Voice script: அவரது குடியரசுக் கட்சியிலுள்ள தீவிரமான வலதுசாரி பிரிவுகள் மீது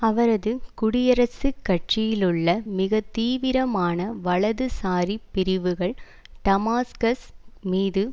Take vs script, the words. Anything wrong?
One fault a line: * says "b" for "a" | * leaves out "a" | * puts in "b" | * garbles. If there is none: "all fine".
* puts in "மிக"
* puts in "டமாஸ்கஸ்"